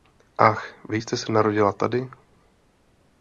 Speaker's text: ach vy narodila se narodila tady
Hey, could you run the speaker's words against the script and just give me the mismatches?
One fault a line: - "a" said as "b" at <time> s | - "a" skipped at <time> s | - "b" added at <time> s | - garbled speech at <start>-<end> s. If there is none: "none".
- "narodila" said as "jste" at 0.9 s